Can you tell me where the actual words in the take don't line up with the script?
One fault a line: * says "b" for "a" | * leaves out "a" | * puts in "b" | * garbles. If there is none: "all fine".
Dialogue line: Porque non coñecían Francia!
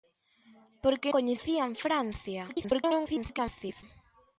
* leaves out "non"
* garbles